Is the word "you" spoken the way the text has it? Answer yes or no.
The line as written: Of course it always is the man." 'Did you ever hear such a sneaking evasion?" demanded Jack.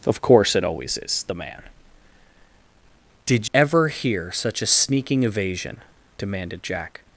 no